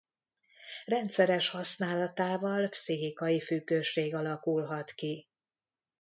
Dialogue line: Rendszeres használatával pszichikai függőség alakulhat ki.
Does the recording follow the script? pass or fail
pass